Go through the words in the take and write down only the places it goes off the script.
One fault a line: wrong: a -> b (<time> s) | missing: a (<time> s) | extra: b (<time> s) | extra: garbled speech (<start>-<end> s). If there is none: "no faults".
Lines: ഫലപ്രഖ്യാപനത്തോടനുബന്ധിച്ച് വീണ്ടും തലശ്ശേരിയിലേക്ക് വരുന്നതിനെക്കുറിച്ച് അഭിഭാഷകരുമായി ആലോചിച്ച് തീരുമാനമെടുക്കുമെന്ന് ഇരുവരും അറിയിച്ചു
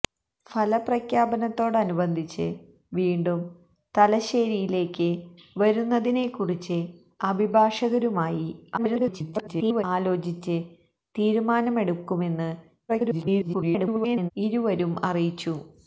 extra: garbled speech (8.8-9.8 s)
extra: garbled speech (12.9-14.3 s)